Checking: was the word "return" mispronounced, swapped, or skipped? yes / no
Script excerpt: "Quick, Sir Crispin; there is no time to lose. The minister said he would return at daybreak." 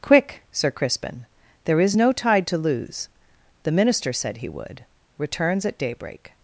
yes